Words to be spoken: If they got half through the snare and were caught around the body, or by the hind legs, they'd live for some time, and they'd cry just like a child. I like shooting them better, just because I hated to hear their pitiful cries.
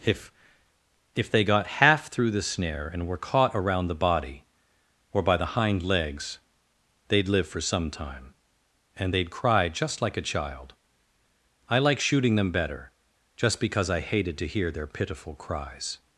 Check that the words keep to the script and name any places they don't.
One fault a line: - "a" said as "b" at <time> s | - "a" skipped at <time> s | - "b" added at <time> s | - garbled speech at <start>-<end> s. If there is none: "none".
- "if" added at 1.1 s